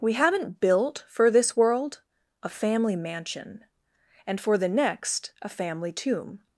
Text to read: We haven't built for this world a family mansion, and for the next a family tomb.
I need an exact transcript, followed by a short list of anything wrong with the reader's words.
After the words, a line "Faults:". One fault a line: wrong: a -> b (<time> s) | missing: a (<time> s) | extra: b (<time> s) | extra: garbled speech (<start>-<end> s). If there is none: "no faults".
We haven't built for this world a family mansion, and for the next a family tomb.
Faults:
no faults